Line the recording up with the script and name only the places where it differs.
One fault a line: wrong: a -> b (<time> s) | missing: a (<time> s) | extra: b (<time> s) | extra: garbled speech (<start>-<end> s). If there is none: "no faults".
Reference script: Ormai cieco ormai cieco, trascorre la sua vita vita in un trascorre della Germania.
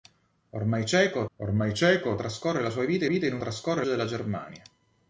no faults